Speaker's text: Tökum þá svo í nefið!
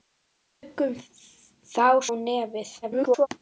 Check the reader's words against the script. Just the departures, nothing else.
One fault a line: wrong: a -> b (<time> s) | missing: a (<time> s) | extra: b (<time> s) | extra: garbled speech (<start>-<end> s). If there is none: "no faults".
missing: svo (1.9 s)
extra: garbled speech (2.8-3.3 s)